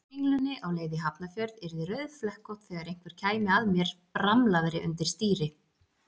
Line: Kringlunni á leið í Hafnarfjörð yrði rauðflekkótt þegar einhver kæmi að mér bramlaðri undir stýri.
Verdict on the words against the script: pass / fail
pass